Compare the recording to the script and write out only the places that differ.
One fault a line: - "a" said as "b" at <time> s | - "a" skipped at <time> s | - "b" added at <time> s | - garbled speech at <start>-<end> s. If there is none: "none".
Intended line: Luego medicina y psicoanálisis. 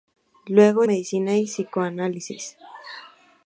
none